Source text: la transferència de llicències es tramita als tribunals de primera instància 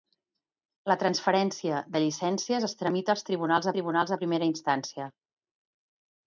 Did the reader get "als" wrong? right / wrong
right